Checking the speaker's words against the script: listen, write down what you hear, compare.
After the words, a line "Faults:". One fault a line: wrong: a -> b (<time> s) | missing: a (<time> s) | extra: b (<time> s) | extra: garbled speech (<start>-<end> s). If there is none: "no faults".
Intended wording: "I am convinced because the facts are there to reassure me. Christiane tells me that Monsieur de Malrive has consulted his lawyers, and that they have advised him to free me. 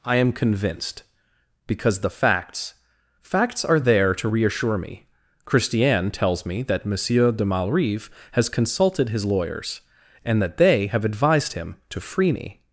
"I am convinced because the facts facts are there to reassure me. Christiane tells me that Monsieur de Malrive has consulted his lawyers, and that they have advised him to free me.
Faults:
extra: facts (3.2 s)